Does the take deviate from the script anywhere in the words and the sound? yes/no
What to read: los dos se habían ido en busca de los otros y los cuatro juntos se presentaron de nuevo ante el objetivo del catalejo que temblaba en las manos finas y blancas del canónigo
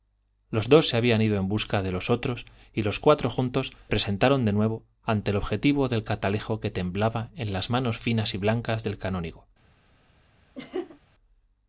yes